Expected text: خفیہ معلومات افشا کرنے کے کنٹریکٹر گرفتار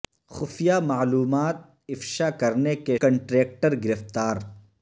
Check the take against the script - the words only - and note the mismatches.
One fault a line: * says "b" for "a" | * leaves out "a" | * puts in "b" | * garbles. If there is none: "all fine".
all fine